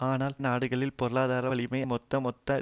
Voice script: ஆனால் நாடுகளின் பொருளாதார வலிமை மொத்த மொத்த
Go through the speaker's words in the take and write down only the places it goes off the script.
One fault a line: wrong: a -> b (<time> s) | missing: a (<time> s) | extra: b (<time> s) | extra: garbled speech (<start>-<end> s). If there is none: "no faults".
no faults